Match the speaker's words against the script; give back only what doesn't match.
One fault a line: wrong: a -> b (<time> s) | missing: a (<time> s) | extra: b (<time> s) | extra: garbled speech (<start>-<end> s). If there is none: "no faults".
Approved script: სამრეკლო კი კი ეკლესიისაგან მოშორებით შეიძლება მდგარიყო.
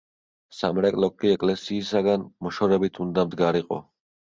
missing: კი (1.3 s)
wrong: შეიძლება -> უნდა (3.1 s)